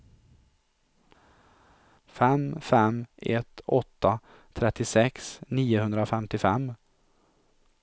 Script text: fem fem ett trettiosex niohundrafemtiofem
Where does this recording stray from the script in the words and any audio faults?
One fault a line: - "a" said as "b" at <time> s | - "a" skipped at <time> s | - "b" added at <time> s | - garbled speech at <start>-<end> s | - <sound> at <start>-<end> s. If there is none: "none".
- "åtta" added at 3.7 s